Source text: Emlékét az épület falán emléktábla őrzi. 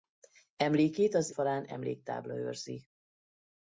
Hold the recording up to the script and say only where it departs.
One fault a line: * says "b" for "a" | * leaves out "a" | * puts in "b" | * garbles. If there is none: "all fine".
* leaves out "épület"